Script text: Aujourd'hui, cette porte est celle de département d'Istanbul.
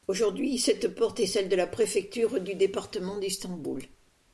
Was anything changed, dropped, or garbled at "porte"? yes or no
no